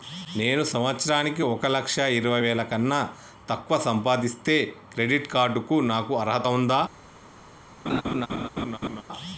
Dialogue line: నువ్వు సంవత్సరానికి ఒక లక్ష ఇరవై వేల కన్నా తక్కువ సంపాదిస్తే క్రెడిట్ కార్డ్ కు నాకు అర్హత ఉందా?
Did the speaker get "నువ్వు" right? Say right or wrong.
wrong